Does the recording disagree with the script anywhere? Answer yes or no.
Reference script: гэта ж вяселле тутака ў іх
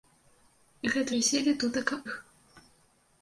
yes